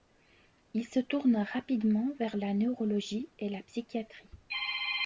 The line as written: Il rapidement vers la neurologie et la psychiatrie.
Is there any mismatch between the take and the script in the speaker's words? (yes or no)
yes